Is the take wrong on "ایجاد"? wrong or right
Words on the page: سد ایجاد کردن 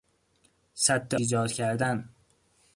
right